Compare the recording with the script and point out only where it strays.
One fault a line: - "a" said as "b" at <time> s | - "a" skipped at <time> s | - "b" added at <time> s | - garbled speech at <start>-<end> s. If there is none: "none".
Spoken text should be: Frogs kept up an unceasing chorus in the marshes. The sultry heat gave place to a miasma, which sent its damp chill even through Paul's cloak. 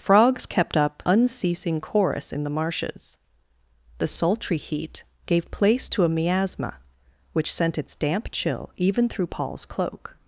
- "an" skipped at 1.0 s